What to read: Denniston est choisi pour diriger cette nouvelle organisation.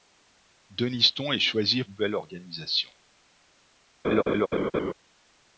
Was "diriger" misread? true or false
true